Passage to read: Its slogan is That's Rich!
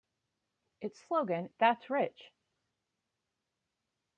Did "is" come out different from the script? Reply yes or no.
yes